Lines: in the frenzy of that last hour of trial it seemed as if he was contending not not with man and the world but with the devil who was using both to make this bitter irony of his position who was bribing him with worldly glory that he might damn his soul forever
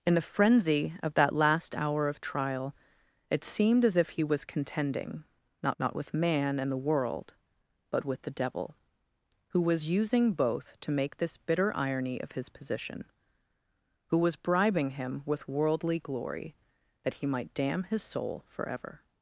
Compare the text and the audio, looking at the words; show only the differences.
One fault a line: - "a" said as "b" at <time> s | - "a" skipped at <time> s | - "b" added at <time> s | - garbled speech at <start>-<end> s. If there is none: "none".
none